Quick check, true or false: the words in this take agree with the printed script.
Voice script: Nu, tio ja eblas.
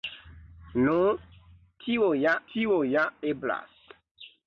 false